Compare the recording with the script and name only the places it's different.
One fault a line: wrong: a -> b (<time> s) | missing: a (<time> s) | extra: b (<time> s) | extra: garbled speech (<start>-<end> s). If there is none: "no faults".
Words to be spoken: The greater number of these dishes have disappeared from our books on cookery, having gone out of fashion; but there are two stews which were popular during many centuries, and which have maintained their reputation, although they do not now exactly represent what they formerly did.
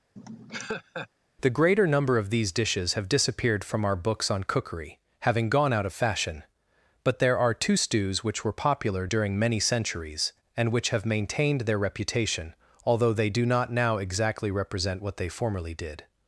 no faults